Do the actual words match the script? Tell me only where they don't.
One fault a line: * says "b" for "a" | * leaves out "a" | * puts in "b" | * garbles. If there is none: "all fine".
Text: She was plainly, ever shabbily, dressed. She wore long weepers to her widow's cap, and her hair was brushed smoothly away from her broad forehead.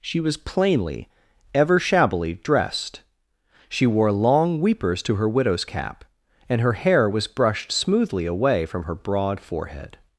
all fine